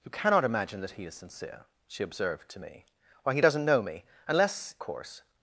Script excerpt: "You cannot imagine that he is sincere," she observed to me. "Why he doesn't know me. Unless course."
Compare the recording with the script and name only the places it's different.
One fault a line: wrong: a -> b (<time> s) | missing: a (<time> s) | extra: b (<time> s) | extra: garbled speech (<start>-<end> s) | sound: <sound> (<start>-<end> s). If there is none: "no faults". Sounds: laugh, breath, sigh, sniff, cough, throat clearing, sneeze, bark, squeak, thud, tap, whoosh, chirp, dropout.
no faults